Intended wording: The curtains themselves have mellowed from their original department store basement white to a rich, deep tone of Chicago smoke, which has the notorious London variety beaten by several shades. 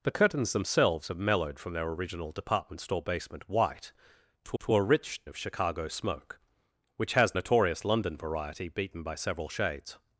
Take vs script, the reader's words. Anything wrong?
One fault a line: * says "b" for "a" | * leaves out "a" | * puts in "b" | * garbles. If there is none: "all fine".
* puts in "to"
* leaves out "deep tone"
* leaves out "the"